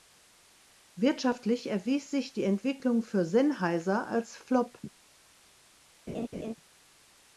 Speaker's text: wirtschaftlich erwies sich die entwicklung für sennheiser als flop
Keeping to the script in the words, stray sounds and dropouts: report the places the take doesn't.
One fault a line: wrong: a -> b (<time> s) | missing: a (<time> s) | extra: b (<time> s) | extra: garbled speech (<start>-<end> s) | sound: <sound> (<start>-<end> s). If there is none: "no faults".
sound: laugh (6.1-6.5 s)